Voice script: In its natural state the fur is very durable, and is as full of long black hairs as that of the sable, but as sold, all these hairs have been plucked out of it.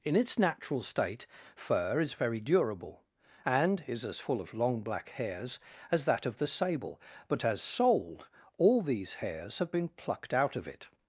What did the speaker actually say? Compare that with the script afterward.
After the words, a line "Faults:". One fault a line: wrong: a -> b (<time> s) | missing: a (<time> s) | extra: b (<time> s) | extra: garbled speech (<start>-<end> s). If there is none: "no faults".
In its natural state fur is very durable, and is as full of long black hairs as that of the sable, but as sold, all these hairs have been plucked out of it.
Faults:
missing: the (1.3 s)